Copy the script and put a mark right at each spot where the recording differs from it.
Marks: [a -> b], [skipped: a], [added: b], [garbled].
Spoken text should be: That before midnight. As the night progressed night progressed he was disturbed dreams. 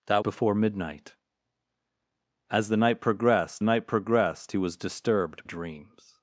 That before midnight. As the night progressed night progressed he was disturbed dreams.